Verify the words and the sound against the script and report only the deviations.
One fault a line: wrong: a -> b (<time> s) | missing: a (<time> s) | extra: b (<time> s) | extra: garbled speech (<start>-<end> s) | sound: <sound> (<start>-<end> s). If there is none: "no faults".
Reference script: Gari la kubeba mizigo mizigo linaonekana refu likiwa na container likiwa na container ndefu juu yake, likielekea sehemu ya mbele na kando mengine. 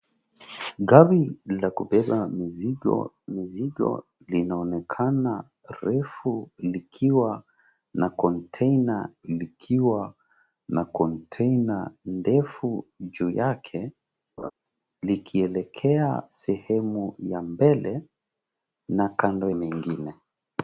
sound: laugh (14.4-14.5 s)